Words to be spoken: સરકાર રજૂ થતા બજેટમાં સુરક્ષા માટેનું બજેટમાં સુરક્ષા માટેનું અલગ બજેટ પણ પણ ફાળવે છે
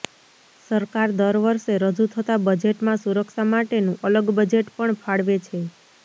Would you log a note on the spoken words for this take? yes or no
yes